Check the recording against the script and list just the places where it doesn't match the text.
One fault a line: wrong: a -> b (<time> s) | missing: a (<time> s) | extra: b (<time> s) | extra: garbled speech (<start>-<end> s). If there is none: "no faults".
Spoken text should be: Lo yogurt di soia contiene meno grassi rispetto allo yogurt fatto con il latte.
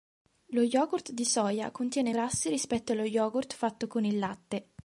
missing: meno (2.1 s)